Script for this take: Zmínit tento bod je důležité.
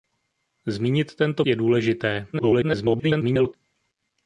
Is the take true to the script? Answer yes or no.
no